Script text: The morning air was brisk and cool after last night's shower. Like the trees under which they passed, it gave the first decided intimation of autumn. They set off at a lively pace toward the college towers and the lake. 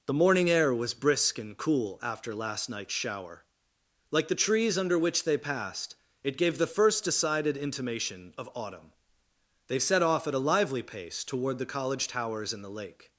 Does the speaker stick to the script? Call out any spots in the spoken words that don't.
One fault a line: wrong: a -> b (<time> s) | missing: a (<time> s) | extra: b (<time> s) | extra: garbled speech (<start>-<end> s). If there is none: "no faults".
no faults